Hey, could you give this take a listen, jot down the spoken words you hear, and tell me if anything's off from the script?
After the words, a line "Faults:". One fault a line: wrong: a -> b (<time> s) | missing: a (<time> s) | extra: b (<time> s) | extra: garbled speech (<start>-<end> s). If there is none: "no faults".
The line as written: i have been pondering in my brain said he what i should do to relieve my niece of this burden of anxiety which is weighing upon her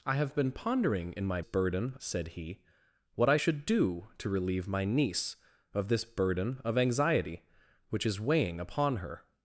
i have been pondering in my burden said he what i should do to relieve my niece of this burden of anxiety which is weighing upon her
Faults:
wrong: brain -> burden (1.4 s)